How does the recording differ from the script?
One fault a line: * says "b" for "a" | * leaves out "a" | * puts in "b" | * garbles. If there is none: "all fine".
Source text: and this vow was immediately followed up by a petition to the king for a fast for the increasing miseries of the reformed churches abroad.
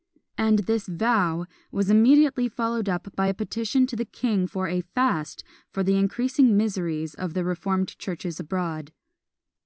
all fine